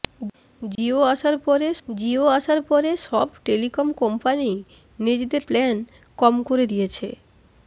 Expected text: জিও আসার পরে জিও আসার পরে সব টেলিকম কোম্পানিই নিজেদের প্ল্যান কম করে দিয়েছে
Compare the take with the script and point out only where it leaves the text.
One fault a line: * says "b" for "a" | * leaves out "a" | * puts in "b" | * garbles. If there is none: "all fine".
all fine